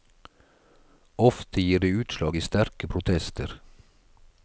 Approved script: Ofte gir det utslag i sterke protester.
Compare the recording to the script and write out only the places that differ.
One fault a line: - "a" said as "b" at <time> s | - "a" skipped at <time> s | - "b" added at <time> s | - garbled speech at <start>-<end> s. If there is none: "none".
none